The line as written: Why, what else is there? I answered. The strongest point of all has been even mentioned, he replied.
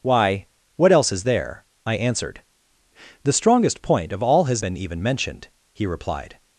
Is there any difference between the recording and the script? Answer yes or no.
no